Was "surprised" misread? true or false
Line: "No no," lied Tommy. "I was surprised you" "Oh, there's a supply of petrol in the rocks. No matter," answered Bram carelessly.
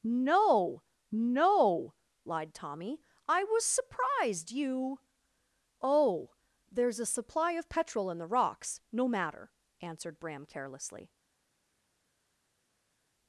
false